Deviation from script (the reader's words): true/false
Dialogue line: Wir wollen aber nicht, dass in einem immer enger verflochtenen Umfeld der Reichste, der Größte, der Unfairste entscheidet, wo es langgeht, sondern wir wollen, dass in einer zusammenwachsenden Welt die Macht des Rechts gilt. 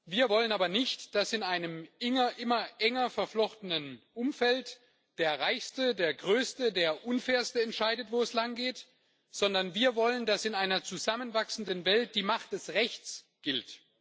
false